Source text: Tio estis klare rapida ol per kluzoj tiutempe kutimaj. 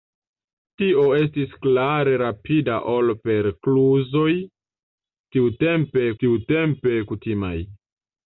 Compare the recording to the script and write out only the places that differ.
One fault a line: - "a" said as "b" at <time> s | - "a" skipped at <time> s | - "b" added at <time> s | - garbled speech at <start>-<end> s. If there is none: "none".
- "tiutempe" added at 6.2 s